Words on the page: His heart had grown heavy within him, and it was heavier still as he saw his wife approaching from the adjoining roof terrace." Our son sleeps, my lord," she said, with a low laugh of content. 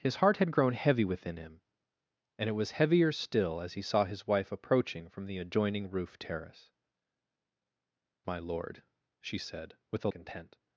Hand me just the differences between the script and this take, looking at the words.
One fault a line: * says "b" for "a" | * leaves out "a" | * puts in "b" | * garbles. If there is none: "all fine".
* leaves out "Our son sleeps"
* leaves out "low laugh of"